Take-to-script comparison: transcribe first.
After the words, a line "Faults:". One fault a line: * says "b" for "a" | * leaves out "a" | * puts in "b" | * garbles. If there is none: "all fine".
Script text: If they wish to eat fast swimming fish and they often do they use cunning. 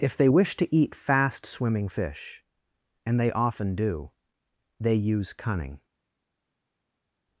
If they wish to eat fast swimming fish and they often do they use cunning.
Faults:
all fine